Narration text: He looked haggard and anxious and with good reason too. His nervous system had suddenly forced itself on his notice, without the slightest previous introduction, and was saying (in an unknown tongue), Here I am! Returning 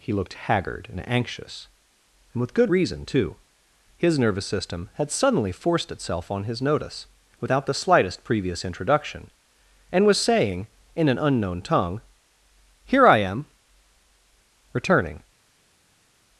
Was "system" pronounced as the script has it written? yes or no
yes